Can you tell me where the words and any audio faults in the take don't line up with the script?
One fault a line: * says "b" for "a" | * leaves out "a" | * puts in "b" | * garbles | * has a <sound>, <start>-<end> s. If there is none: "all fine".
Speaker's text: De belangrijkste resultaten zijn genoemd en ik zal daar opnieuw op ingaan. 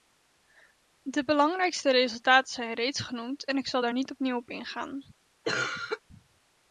* puts in "reeds"
* puts in "niet"
* has a cough, 5.4-6.0 s